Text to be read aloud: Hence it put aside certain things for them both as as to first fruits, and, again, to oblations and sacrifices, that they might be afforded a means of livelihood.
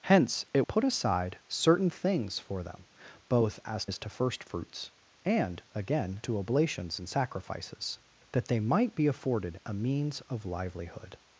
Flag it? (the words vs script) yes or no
no